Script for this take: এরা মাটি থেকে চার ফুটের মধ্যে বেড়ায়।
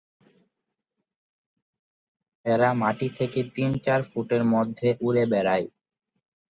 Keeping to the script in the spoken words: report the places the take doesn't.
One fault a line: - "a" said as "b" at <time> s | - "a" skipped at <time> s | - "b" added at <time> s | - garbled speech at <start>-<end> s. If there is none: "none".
- "তিন" added at 3.5 s
- "উড়ে" added at 5.0 s